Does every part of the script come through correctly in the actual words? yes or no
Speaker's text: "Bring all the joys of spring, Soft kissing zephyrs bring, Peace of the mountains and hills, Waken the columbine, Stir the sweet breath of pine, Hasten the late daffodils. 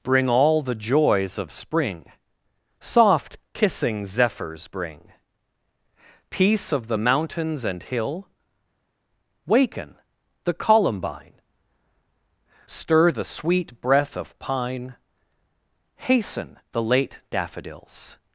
no